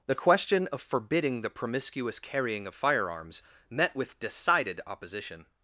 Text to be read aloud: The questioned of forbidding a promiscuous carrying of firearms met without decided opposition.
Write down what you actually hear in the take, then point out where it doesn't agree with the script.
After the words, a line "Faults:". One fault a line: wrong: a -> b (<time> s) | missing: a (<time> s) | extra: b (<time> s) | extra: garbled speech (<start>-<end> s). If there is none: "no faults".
The question of forbidding the promiscuous carrying of firearms met with decided opposition.
Faults:
wrong: questioned -> question (0.1 s)
wrong: a -> the (1.4 s)
wrong: without -> with (3.9 s)